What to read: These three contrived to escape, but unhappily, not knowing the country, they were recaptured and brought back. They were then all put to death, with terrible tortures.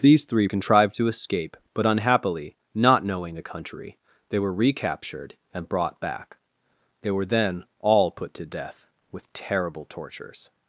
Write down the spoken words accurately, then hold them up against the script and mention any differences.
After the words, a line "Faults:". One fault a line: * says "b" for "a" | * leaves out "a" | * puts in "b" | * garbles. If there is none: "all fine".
These three contrived to escape, but unhappily, not knowing the country, they were recaptured and brought back. They were then all put to death, with terrible tortures.
Faults:
all fine